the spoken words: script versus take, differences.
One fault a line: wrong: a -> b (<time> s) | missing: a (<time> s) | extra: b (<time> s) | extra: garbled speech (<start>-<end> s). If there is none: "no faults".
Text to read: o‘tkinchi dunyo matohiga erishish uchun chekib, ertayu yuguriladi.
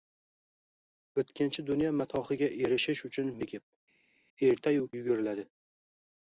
no faults